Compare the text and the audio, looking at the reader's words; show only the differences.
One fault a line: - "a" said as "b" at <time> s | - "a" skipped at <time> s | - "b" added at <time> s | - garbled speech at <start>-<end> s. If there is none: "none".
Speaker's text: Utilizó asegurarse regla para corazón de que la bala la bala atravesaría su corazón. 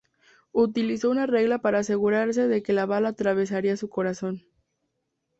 - "asegurarse" said as "una" at 1.1 s
- "corazón" said as "asegurarse" at 1.8 s
- "la bala" skipped at 3.1 s